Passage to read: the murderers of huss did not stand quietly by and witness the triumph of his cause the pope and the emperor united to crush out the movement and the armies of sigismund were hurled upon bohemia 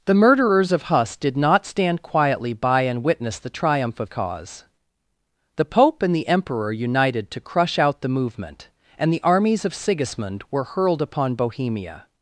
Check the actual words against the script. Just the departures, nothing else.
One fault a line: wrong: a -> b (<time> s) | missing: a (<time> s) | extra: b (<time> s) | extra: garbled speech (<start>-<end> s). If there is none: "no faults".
missing: his (4.1 s)